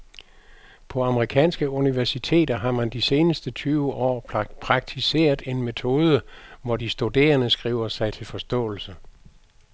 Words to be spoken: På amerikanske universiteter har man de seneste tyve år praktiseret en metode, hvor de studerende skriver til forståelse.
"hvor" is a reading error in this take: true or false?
false